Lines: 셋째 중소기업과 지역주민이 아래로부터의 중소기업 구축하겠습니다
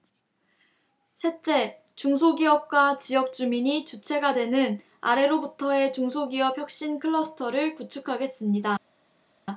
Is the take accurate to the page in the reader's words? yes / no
no